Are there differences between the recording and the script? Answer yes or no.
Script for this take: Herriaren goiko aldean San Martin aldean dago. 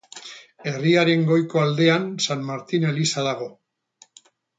yes